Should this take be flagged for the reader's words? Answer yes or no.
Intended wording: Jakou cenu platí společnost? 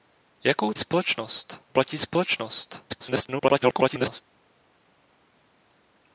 yes